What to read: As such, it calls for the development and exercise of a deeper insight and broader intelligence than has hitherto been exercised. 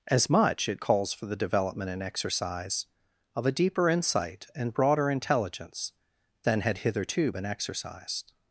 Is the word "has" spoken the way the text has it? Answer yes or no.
no